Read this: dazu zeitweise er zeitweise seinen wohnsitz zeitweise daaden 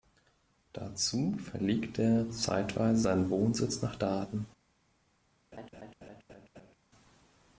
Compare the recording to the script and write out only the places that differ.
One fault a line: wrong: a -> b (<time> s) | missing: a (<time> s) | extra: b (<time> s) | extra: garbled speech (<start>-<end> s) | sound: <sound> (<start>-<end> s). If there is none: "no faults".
wrong: zeitweise -> verlegte (1.3 s)
wrong: zeitweise -> nach (3.8 s)
sound: laugh (5.5-6.7 s)